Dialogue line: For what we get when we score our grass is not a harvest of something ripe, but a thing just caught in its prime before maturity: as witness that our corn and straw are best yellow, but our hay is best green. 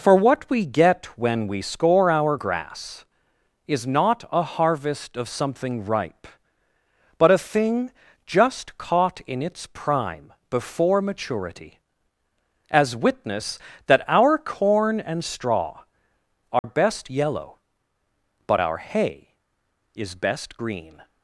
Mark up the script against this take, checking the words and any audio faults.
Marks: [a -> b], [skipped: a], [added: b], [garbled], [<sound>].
For what we get when we score our grass is not a harvest of something ripe, but a thing just caught in its prime before maturity: as witness that our corn and straw are [dropout] best yellow, but our hay is best green.